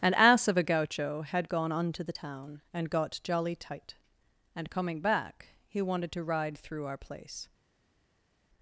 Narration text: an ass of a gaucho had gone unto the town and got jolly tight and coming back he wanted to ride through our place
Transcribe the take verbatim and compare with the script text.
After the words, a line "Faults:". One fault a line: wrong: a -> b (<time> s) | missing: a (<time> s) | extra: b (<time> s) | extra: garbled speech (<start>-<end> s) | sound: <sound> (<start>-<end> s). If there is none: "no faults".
an ass of a gaucho had gone unto the town and got jolly tight and coming back he wanted to ride through our place
Faults:
no faults